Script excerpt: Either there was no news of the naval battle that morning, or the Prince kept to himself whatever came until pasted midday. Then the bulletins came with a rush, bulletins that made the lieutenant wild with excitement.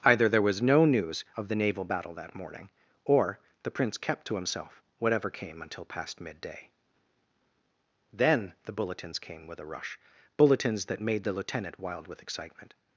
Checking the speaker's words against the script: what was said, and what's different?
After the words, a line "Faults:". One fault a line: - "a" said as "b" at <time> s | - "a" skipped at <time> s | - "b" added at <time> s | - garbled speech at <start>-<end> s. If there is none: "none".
Either there was no news of the naval battle that morning, or the Prince kept to himself whatever came until past midday. Then the bulletins came with a rush, bulletins that made the lieutenant wild with excitement.
Faults:
- "pasted" said as "past" at 5.9 s